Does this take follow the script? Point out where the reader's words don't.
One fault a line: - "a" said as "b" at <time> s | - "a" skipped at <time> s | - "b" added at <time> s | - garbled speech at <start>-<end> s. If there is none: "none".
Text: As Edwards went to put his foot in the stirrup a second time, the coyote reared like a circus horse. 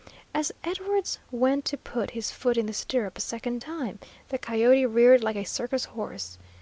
none